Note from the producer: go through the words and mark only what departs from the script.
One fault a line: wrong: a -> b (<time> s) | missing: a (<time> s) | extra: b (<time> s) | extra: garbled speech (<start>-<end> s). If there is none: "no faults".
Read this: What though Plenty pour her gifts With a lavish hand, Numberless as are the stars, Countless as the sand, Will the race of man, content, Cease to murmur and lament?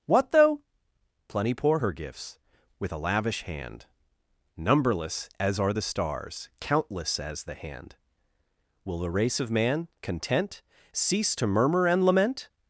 wrong: sand -> hand (7.6 s)